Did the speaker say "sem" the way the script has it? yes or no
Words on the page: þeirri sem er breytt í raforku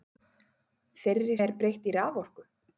no